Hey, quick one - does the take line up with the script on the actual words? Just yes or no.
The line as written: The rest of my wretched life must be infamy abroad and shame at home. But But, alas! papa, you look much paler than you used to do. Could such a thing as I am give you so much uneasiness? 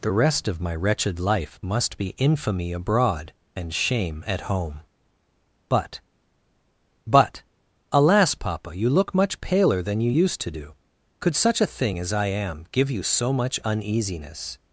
yes